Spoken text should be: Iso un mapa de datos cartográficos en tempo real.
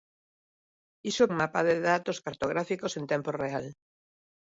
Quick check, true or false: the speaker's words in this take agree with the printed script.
true